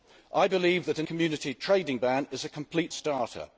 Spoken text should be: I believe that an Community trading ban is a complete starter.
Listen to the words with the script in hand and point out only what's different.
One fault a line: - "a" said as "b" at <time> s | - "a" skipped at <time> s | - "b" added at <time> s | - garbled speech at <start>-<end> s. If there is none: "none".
none